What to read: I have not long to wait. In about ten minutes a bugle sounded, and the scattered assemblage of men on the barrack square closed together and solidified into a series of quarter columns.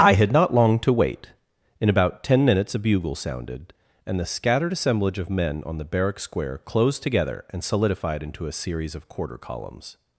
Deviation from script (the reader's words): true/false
true